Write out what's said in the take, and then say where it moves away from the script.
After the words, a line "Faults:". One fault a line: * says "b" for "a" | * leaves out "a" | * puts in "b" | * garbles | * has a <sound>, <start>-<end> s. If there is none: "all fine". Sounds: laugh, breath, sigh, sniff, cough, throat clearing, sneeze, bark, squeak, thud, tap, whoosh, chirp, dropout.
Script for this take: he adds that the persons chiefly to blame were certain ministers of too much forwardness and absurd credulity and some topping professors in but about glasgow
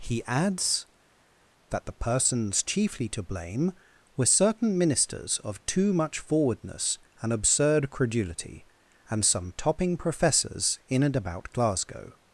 he adds that the persons chiefly to blame were certain ministers of too much forwardness and absurd credulity and some topping professors in and about glasgow
Faults:
* says "and" for "but"